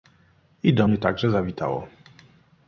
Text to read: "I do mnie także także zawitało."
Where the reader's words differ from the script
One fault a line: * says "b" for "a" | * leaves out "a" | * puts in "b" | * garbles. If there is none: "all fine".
* leaves out "także"